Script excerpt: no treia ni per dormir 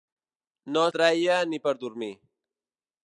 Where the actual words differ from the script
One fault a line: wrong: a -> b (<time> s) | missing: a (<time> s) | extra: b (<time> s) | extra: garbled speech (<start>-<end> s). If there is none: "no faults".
no faults